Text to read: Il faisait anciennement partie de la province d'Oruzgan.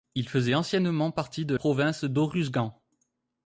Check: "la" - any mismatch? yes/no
yes